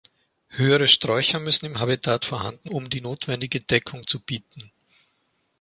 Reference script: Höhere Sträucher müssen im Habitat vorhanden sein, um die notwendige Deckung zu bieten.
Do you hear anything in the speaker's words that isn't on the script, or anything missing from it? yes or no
yes